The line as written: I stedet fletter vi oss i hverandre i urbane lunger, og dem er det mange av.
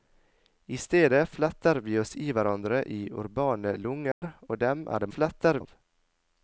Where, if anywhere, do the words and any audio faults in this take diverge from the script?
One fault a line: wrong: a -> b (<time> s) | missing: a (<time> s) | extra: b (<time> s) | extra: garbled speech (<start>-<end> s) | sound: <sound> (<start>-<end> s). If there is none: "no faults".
sound: dropout (4.1-4.2 s)
wrong: mange -> fletter (5.1 s)